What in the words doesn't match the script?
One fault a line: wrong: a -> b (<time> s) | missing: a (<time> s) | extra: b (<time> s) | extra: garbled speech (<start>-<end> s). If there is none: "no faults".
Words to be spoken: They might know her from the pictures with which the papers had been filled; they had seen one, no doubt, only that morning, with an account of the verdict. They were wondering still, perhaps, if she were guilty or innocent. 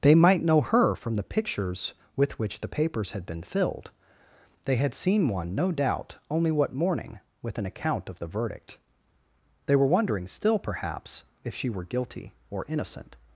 wrong: that -> what (6.5 s)